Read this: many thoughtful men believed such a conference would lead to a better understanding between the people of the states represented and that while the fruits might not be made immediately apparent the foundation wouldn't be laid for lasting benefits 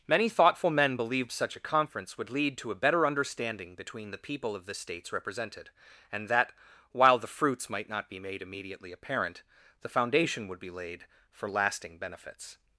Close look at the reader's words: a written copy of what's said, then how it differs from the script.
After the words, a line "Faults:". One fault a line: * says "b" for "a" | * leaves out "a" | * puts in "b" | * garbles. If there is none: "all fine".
many thoughtful men believed such a conference would lead to a better understanding between the people of the states represented and that while the fruits might not be made immediately apparent the foundation would be laid for lasting benefits
Faults:
* says "would" for "wouldn't"